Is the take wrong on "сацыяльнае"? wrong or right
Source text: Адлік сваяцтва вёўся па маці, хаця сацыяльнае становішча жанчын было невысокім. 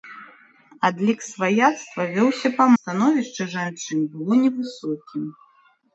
wrong